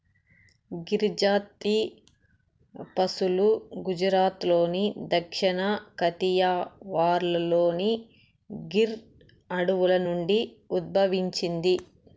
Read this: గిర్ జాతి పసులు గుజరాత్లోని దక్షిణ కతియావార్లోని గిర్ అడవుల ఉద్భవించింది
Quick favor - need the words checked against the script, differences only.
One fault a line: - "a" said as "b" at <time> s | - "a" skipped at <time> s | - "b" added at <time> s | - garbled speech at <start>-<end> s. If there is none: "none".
- "నుండి" added at 10.1 s